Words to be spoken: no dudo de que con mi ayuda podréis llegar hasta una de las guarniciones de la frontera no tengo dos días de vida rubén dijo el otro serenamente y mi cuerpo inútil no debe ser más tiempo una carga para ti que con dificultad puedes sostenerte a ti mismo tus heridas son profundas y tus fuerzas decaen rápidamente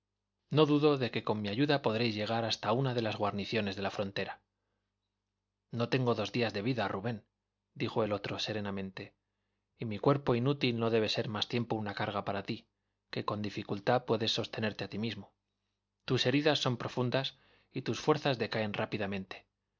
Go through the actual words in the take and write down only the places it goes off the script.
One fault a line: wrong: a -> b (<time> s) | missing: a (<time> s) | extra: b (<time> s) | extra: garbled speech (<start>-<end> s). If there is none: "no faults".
no faults